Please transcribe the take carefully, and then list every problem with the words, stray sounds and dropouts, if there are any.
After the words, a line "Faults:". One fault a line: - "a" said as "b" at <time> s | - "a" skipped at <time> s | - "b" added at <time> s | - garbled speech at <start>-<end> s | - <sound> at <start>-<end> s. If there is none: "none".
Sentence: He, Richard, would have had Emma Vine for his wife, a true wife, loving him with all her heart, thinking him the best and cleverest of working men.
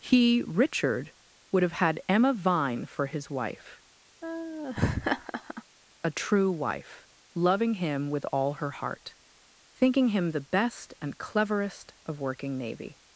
He, Richard, would have had Emma Vine for his wife, a true wife, loving him with all her heart, thinking him the best and cleverest of working navy.
Faults:
- laugh at 4.2-5.6 s
- "men" said as "navy" at 12.6 s